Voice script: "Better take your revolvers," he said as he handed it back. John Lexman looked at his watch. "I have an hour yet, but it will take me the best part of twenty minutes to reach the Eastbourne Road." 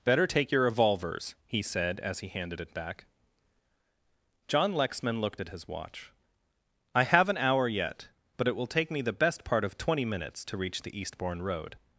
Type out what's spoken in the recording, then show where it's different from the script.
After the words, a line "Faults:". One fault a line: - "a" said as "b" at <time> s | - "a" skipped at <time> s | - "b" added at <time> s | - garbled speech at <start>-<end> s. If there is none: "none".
"Better take your revolvers," he said as he handed it back. John Lexman looked at his watch. "I have an hour yet, but it will take me the best part of twenty minutes to reach the Eastbourne Road."
Faults:
none